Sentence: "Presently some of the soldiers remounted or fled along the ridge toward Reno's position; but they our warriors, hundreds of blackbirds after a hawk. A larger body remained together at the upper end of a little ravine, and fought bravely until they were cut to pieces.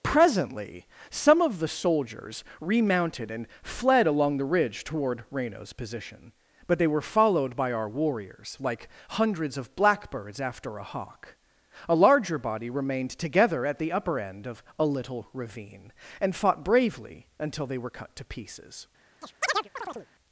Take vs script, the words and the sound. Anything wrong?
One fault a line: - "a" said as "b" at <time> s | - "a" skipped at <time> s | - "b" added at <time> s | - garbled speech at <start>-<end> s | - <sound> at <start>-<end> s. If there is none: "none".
- "or" said as "and" at 3.3 s
- "were followed by" added at 6.9 s
- "like" added at 8.6 s
- chirp at 19.2-20.1 s